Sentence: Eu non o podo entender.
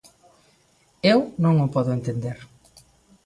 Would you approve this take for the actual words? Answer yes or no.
yes